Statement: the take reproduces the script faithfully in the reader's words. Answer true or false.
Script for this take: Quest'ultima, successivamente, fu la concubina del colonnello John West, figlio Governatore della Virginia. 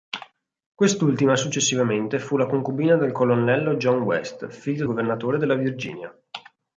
true